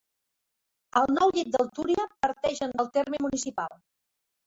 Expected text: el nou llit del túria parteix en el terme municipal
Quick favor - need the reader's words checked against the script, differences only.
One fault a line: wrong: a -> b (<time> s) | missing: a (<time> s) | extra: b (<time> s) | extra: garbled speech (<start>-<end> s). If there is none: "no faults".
no faults